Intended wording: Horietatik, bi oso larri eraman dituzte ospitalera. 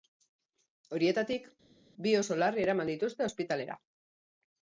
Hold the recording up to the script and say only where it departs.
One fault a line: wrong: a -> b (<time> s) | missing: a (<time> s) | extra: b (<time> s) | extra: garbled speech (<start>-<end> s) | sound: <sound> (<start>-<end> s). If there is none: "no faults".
no faults